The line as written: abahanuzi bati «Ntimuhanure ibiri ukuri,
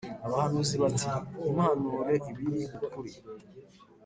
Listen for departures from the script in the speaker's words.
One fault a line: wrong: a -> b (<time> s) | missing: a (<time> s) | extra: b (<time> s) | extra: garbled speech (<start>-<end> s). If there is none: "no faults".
no faults